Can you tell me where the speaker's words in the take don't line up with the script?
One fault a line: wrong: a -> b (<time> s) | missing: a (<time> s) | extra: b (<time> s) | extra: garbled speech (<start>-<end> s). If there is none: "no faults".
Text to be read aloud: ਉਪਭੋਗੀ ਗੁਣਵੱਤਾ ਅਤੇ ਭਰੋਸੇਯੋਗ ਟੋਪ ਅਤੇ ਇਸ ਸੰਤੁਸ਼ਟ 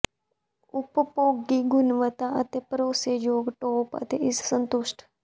no faults